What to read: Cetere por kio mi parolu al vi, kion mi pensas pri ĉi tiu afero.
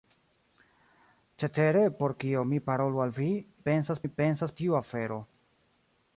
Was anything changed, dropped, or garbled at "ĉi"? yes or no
yes